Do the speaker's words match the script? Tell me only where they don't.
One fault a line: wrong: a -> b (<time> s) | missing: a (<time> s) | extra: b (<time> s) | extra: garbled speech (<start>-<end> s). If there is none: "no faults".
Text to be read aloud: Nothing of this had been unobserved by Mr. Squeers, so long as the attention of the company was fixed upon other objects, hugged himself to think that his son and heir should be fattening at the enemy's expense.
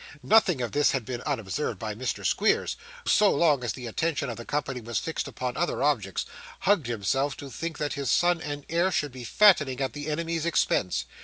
no faults